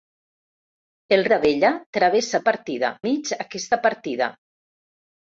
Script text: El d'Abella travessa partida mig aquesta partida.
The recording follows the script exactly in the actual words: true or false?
true